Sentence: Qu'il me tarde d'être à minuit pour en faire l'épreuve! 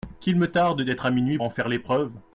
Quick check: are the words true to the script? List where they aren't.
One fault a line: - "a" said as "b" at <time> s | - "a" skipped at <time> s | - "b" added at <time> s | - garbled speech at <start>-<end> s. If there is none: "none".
- "pour" skipped at 1.4 s